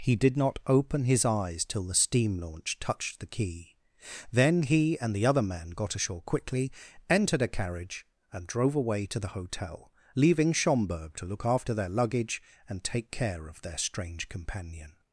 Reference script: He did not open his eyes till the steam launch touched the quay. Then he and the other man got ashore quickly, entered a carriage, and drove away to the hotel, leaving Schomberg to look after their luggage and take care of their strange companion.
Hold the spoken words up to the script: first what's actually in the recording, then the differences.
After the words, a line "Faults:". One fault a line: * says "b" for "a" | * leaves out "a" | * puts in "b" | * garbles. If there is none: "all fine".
He did not open his eyes till the steam launch touched the quay. Then he and the other man got ashore quickly, entered a carriage, and drove away to the hotel, leaving Schomberg to look after their luggage and take care of their strange companion.
Faults:
all fine